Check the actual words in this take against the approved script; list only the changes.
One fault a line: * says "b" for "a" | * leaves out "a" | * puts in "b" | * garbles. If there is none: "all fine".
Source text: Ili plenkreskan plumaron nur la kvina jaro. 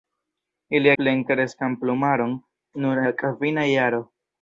all fine